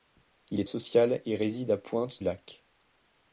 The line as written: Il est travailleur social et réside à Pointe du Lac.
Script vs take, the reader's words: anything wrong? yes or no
yes